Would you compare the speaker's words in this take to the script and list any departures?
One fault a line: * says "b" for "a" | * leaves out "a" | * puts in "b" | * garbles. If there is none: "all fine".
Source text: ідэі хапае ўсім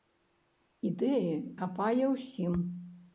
all fine